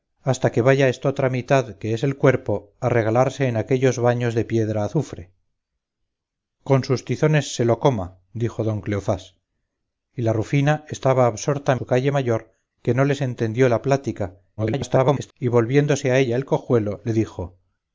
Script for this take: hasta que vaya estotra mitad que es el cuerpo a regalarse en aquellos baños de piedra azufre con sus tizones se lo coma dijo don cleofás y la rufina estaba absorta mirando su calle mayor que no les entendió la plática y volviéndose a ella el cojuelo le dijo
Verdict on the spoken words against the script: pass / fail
fail